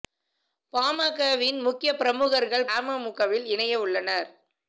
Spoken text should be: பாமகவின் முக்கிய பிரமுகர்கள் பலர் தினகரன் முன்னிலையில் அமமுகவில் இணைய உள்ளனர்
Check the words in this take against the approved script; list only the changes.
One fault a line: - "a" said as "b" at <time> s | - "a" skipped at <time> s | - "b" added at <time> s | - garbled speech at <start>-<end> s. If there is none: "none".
- "பலர் தினகரன் முன்னிலையில்" skipped at 2.6 s